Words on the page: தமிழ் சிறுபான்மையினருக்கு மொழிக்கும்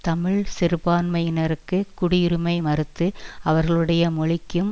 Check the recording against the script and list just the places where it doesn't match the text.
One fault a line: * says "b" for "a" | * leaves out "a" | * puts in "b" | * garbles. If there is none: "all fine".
* puts in "குடியுரிமை மறுத்து அவர்களுடைய"